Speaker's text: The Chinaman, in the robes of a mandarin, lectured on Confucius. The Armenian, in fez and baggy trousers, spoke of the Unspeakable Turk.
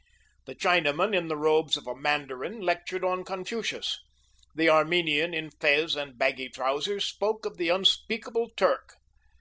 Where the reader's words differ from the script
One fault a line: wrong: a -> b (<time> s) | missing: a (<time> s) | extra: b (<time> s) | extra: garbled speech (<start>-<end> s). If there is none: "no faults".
no faults